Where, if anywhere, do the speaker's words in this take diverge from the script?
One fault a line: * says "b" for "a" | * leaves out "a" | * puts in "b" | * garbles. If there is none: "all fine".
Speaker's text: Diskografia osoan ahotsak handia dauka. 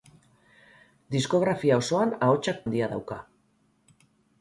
all fine